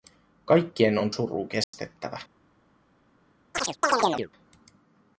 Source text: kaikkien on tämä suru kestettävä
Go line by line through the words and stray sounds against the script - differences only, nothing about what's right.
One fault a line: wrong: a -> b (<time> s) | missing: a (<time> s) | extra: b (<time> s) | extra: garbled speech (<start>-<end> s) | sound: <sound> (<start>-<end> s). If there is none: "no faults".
missing: tämä (1.1 s)
sound: dropout (1.6-1.7 s)
sound: chirp (3.5-4.3 s)